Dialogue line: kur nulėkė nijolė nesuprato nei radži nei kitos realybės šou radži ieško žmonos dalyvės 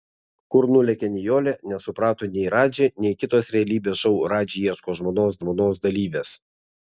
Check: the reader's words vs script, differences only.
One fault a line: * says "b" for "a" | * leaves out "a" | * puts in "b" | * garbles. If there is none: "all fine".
* puts in "žmonos"